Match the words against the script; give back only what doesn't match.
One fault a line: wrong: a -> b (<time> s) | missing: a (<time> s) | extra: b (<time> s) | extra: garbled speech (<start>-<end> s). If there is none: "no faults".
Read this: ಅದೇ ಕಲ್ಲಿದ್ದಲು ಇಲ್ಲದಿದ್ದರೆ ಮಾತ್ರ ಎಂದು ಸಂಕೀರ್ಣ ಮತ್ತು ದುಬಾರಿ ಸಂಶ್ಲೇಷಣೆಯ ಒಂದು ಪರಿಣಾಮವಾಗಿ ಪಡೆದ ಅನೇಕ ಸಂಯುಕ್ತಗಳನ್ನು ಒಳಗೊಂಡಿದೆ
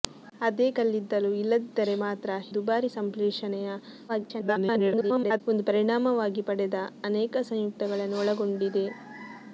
missing: ಎಂದು ಸಂಕೀರ್ಣ ಮತ್ತು (2.3 s)
extra: garbled speech (4.1-5.4 s)